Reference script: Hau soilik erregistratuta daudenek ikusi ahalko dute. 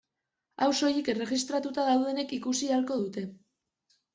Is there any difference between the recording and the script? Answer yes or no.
no